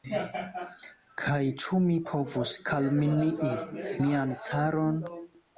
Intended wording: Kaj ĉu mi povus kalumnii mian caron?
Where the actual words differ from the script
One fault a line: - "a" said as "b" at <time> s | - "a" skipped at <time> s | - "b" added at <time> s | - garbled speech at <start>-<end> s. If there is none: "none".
none